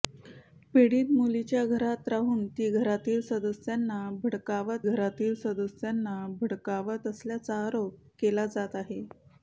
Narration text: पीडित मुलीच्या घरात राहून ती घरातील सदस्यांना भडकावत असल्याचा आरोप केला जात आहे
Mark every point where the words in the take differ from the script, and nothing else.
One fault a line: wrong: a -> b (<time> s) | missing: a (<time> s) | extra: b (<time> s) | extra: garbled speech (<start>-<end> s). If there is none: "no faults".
extra: घरातील सदस्यांना भडकावत (4.8 s)